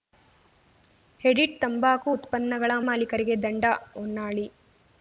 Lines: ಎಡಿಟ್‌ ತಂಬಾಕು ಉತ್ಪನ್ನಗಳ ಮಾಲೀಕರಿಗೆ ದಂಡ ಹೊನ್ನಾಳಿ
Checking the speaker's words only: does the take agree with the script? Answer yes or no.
yes